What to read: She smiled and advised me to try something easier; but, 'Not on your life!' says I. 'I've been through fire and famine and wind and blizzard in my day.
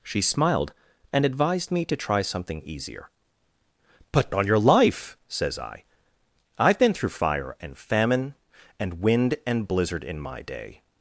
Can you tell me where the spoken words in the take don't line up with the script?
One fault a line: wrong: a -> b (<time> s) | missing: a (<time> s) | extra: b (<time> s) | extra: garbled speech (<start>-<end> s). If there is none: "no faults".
missing: Not (4.3 s)